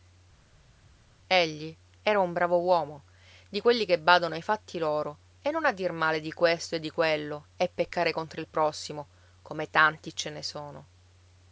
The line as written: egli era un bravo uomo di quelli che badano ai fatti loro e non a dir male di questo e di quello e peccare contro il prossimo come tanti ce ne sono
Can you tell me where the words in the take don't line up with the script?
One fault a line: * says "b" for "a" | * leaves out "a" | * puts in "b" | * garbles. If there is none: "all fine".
all fine